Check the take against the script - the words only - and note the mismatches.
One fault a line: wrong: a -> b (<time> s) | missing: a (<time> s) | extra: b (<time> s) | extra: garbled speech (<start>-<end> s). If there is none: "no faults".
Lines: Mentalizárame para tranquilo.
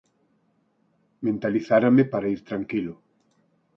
extra: ir (2.3 s)